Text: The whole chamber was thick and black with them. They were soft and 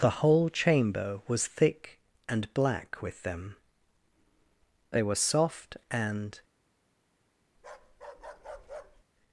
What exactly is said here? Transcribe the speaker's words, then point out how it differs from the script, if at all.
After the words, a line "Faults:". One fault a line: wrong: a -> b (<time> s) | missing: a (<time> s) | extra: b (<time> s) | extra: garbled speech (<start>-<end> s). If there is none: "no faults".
The whole chamber was thick and black with them. They were soft and
Faults:
no faults